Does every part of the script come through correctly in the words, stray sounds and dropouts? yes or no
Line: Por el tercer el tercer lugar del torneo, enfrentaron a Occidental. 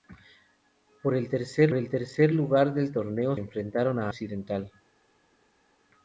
yes